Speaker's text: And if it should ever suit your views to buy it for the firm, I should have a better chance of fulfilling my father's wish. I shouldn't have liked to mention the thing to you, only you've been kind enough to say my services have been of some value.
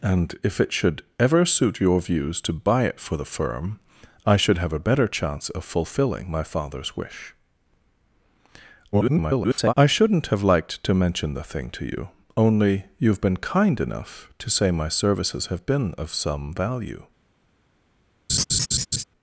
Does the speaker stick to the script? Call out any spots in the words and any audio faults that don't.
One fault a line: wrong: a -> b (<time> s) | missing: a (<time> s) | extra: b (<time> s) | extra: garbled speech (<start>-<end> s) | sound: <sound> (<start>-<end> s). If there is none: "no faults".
extra: garbled speech (8.9-9.7 s)
sound: laugh (18.3-19.0 s)